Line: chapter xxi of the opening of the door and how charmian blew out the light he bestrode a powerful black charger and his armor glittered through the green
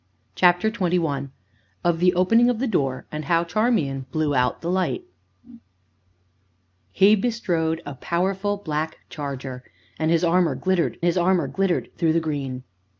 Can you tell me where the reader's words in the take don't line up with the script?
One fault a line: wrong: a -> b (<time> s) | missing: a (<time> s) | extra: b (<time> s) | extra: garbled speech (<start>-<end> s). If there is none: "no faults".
extra: his armor glittered (11.0 s)